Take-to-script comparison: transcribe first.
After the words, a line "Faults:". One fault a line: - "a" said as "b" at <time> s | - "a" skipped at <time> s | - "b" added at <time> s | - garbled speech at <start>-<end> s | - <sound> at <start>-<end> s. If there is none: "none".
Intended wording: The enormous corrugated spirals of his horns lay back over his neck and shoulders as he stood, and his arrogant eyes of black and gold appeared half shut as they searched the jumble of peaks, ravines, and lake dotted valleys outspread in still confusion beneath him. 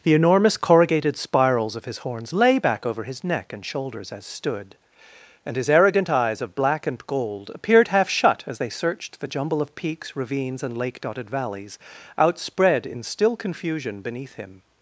The enormous corrugated spirals of his horns lay back over his neck and shoulders as stood, and his arrogant eyes of black and gold appeared half shut as they searched the jumble of peaks, ravines, and lake dotted valleys outspread in still confusion beneath him.
Faults:
- "he" skipped at 4.2 s